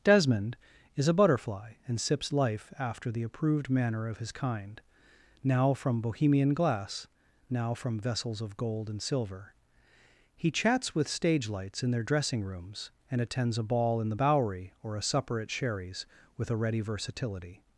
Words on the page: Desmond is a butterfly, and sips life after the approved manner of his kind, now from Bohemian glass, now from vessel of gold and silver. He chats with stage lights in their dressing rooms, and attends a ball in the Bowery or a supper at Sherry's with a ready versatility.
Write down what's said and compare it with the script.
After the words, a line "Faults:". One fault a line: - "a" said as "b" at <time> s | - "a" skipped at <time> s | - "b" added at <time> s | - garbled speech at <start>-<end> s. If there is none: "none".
Desmond is a butterfly, and sips life after the approved manner of his kind, now from Bohemian glass, now from vessels of gold and silver. He chats with stage lights in their dressing rooms, and attends a ball in the Bowery or a supper at Sherry's with a ready versatility.
Faults:
- "vessel" said as "vessels" at 8.0 s